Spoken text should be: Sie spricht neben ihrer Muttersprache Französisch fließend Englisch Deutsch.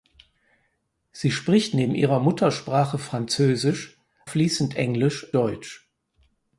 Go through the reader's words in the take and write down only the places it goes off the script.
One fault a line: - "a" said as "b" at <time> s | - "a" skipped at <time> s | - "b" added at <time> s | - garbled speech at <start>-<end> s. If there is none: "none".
none